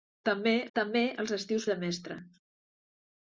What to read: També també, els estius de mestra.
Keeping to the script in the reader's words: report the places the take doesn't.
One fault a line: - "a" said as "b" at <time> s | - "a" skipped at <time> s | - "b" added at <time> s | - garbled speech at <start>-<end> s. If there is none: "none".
none